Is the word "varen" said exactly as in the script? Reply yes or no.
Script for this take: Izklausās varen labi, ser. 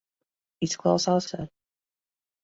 no